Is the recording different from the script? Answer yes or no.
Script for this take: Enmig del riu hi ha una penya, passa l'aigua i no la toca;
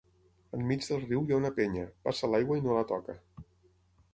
no